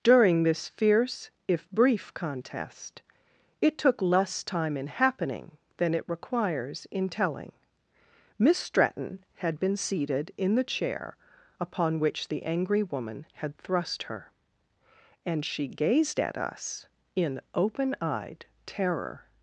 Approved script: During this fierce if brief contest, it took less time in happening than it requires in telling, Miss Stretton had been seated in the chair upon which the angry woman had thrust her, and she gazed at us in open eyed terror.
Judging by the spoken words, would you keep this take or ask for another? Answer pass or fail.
pass